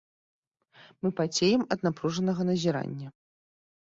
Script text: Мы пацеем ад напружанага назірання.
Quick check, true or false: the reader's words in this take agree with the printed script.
true